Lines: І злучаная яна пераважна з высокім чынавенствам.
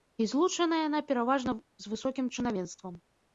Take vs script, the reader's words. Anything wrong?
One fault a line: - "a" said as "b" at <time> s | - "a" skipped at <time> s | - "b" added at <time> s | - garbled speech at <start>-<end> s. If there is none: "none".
none